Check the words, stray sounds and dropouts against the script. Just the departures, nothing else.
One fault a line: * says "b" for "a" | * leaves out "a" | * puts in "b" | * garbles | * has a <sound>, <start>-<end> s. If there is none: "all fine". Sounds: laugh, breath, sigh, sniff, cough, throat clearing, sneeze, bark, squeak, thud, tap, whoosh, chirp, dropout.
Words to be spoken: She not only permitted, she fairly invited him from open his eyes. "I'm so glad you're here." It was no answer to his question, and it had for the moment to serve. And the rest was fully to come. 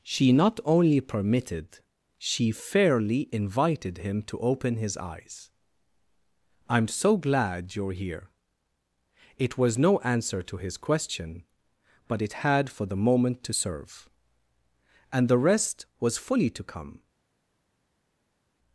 * says "to" for "from"
* says "but" for "and"